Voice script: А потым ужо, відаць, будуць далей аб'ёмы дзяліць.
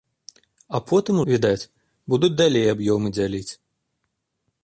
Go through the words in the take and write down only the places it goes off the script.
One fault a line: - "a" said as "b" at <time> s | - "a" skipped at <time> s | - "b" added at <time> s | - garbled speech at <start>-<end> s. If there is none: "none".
- "ужо" skipped at 1.2 s